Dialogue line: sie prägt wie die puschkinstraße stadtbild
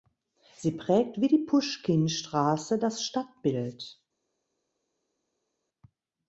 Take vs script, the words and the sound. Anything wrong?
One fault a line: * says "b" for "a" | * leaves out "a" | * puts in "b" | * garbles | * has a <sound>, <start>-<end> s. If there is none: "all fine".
* puts in "das"